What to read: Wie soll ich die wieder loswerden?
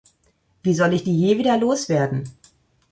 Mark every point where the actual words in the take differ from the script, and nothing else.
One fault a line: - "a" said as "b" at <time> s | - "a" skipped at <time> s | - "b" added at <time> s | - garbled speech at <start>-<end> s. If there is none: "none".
- "je" added at 1.2 s